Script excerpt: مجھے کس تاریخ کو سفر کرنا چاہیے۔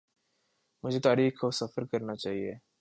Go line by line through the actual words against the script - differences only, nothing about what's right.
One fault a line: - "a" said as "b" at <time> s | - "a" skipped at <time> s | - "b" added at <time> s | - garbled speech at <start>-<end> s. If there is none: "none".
- "کس" skipped at 1.0 s